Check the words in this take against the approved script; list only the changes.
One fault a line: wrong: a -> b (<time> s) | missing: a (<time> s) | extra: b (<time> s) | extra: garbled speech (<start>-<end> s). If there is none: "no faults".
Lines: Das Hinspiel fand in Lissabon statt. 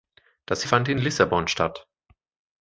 missing: Hinspiel (0.6 s)